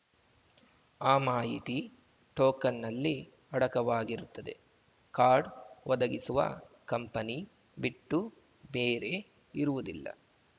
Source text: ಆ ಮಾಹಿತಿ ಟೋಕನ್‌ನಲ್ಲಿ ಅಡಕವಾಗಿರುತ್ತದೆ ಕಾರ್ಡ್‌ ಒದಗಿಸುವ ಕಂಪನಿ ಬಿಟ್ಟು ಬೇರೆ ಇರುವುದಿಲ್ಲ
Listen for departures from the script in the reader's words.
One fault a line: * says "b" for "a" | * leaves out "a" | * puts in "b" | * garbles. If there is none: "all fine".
all fine